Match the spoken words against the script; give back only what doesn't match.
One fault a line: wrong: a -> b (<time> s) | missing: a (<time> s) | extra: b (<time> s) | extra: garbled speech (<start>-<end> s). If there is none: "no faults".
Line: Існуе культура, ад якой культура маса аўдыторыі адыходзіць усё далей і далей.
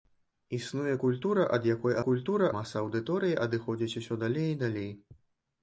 no faults